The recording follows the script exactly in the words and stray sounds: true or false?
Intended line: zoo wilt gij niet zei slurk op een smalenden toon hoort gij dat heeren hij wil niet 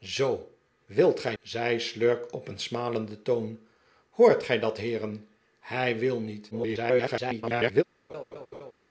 false